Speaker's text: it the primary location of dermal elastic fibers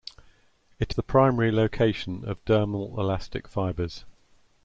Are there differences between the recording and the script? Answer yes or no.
no